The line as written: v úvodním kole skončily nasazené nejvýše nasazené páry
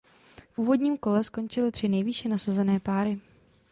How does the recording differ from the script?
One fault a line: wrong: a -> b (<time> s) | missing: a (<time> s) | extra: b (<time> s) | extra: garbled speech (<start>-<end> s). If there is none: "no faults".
wrong: nasazené -> tři (1.7 s)